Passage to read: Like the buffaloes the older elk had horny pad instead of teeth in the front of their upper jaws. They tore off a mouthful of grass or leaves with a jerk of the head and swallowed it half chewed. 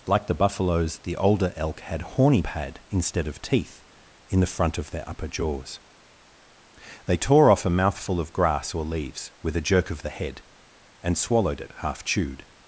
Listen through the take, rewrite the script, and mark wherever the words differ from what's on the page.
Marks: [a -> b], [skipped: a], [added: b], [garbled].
Like the buffaloes the older elk had horny pad instead of teeth in the front of their upper jaws. They tore off a mouthful of grass or leaves with a jerk of the head and swallowed it half chewed.